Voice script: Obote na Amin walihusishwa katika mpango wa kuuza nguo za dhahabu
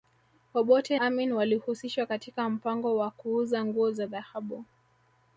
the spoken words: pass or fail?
fail